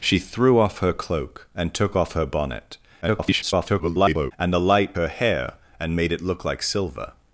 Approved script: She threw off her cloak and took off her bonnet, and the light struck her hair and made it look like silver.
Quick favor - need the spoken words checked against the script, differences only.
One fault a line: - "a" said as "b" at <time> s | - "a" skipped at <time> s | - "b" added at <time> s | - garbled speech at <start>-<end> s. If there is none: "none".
- garbled speech at 3.0-4.3 s
- "struck" skipped at 5.0 s